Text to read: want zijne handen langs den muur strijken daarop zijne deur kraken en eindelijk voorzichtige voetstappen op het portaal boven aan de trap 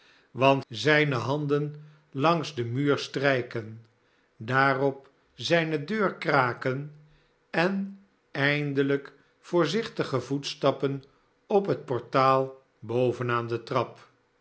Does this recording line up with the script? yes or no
yes